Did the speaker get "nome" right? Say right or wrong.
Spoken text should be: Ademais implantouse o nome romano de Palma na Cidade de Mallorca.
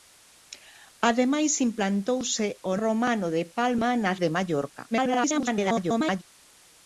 wrong